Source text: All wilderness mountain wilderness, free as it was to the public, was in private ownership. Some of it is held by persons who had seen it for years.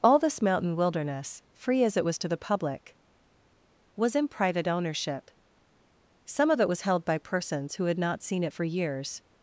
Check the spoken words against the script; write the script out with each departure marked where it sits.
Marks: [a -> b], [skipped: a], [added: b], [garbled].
All [wilderness -> this] mountain wilderness, free as it was to the public, was in private ownership. Some of it [is -> was] held by persons who had [added: not] seen it for years.